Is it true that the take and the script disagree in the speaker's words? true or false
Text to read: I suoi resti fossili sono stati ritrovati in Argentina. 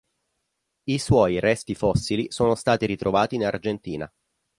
false